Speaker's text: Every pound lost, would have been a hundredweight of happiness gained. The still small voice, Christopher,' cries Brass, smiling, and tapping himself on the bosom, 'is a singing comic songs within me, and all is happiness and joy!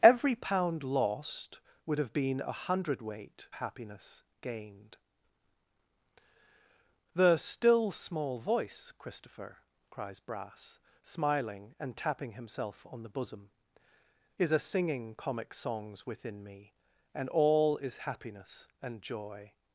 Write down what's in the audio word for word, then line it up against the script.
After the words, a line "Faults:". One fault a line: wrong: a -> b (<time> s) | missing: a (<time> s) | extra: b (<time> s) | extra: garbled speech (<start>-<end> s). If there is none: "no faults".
Every pound lost, would have been a hundredweight happiness gained. The still small voice, Christopher,' cries Brass, smiling, and tapping himself on the bosom, 'is a singing comic songs within me, and all is happiness and joy!
Faults:
missing: of (3.5 s)